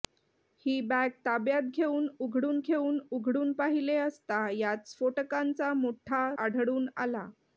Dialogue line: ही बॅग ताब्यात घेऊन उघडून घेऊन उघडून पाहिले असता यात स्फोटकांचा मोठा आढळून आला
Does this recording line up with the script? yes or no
yes